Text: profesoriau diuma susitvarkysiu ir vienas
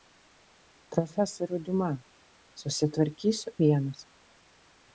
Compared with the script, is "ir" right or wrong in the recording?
wrong